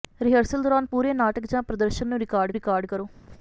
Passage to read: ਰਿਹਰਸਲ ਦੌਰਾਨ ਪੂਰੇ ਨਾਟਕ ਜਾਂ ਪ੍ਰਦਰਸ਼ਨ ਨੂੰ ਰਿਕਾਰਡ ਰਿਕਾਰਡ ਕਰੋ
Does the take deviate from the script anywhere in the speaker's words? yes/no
no